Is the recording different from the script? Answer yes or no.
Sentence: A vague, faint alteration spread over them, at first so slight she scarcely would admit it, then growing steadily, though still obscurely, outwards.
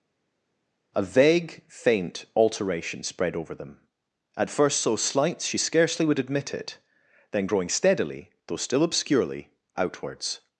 no